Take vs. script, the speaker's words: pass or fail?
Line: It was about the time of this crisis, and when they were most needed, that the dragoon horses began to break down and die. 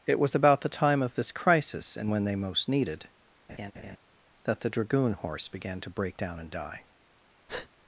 fail